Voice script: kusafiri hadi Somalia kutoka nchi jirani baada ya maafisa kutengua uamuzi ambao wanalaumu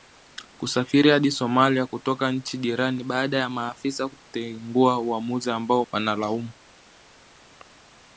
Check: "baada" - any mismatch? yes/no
no